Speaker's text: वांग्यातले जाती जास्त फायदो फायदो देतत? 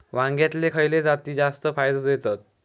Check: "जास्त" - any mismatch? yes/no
no